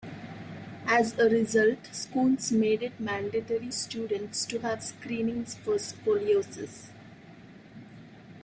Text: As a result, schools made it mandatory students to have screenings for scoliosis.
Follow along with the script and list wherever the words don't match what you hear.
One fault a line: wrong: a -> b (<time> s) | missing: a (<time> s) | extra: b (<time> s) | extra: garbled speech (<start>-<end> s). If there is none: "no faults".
no faults